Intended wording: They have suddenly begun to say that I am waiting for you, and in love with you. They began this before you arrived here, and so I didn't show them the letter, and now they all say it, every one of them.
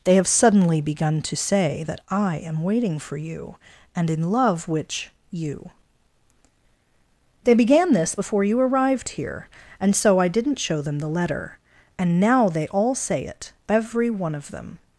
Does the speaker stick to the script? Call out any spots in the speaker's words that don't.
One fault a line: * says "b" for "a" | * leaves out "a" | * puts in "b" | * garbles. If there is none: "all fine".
* says "which" for "with"